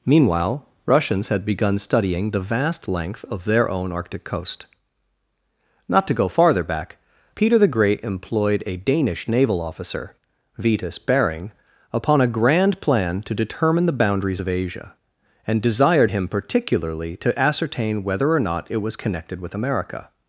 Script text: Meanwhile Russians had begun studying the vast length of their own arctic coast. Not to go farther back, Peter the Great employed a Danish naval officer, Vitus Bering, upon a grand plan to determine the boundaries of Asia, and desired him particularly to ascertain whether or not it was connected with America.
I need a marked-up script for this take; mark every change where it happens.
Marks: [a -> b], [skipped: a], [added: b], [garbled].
Meanwhile Russians had begun studying the vast length of their own arctic coast. Not to go farther back, Peter the Great employed a Danish naval officer, Vitus Bering, upon a grand plan to determine the boundaries of Asia, and desired him particularly to ascertain whether or not it was connected with America.